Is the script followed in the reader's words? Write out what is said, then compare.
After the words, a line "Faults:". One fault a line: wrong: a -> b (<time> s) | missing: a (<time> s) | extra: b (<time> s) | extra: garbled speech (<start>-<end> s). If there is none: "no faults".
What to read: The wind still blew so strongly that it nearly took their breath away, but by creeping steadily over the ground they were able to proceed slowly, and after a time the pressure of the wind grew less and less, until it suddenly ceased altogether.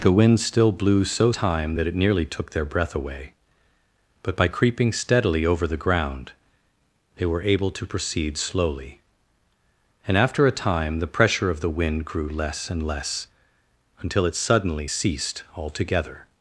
The wind still blew so time that it nearly took their breath away, but by creeping steadily over the ground they were able to proceed slowly, and after a time the pressure of the wind grew less and less, until it suddenly ceased altogether.
Faults:
wrong: strongly -> time (1.4 s)